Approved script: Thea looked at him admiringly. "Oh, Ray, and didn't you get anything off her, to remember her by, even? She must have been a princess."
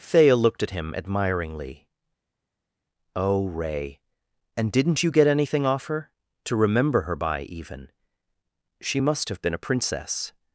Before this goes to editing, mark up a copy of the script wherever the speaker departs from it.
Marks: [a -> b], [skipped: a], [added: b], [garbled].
Thea looked at him admiringly. "Oh, Ray, and didn't you get anything off her, to remember her by, even? She must have been a princess."